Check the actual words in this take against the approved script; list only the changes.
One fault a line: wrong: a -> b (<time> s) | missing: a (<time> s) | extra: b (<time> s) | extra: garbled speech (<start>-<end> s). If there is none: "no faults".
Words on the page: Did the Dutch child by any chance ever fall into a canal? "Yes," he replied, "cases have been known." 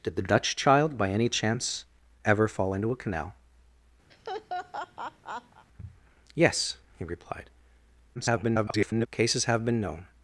extra: garbled speech (8.1-9.1 s)